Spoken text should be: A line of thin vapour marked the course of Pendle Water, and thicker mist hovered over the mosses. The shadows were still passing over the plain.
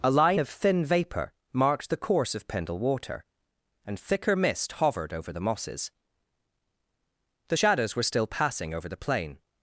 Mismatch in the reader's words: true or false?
false